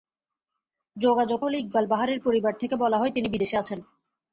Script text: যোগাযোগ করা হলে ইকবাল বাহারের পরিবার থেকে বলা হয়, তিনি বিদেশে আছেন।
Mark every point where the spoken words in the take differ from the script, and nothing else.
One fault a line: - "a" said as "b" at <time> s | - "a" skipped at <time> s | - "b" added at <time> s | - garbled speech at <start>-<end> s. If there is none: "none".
- "করা" skipped at 1.4 s